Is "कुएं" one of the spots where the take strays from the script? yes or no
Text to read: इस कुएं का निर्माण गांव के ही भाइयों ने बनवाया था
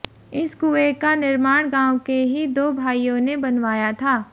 no